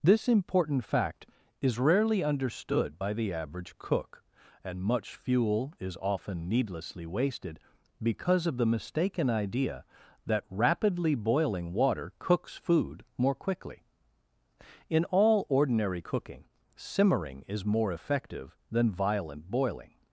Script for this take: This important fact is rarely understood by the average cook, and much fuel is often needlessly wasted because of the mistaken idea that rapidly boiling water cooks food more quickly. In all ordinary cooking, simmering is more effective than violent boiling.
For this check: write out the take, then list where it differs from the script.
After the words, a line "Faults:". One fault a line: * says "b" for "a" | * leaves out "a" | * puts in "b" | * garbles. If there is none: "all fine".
This important fact is rarely understood by the average cook, and much fuel is often needlessly wasted because of the mistaken idea that rapidly boiling water cooks food more quickly. In all ordinary cooking, simmering is more effective than violent boiling.
Faults:
all fine